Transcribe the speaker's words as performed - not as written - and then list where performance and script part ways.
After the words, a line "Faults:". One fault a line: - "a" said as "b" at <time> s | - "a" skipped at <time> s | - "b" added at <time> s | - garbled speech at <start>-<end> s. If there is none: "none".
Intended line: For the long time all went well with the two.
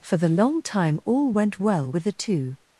For the long time all went well with the two.
Faults:
none